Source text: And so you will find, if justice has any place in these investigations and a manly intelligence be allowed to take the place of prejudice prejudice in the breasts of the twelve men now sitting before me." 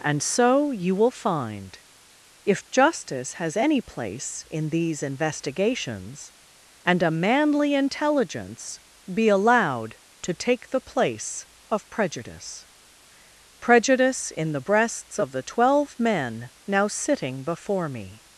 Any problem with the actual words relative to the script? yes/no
no